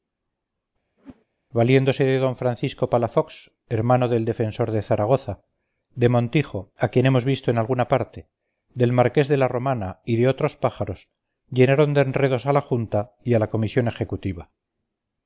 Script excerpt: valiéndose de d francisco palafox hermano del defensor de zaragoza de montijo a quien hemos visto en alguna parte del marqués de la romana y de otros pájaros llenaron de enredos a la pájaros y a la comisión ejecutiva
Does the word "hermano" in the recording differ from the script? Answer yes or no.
no